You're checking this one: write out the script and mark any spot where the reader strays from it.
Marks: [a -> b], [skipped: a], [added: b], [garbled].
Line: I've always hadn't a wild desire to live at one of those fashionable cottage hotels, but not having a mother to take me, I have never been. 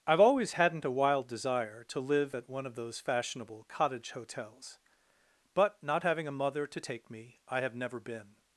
I've always hadn't a wild desire to live at one of those fashionable cottage hotels, but not having a mother to take me, I have never been.